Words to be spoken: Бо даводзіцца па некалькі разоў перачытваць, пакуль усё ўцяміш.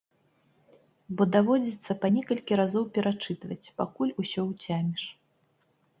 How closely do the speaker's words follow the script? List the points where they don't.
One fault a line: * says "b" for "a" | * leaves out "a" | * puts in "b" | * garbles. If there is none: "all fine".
all fine